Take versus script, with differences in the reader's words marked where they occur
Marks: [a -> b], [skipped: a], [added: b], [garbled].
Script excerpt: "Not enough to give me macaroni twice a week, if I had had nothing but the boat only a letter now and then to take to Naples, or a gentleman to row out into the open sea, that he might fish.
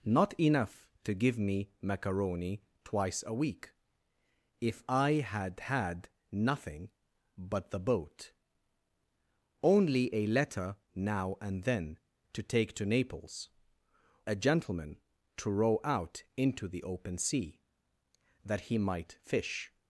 "Not enough to give me macaroni twice a week, if I had had nothing but the boat only a letter now and then to take to Naples, [skipped: or] a gentleman to row out into the open sea, that he might fish.